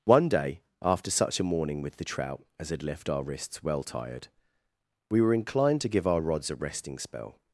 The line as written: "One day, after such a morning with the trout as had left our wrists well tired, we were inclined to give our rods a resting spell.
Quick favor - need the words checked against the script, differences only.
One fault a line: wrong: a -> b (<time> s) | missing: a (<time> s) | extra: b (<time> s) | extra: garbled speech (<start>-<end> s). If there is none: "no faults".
no faults